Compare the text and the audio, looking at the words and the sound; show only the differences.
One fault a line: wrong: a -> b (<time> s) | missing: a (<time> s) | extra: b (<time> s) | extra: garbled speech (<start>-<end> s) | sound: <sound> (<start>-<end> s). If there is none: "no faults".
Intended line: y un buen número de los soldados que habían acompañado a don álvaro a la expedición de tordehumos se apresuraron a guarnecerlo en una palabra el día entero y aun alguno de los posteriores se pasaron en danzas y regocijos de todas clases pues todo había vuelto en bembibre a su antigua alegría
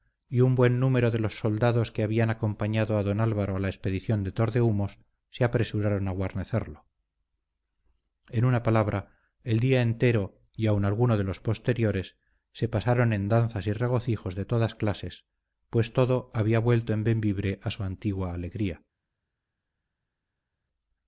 no faults